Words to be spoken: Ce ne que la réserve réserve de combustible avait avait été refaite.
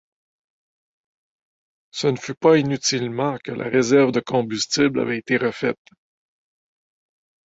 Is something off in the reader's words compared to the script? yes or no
yes